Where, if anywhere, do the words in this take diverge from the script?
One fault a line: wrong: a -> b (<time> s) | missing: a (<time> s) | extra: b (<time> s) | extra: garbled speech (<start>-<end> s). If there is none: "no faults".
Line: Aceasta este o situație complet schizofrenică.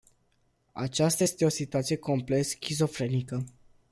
no faults